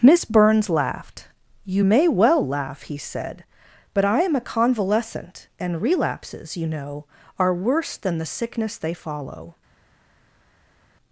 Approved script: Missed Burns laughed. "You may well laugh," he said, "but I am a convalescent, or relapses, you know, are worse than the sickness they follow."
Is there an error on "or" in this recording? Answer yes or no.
yes